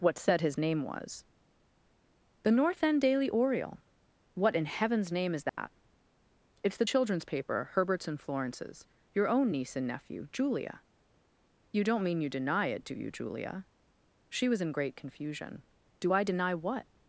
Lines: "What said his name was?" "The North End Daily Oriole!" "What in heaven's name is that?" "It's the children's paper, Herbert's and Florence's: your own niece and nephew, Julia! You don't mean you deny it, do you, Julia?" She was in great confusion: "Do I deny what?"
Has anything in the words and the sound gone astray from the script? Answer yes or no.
yes